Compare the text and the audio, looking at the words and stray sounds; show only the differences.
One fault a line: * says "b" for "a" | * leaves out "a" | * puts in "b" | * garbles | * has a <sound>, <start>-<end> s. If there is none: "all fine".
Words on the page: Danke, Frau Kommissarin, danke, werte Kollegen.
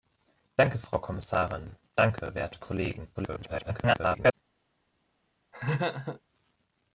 * garbles
* has a laugh, 5.5-6.2 s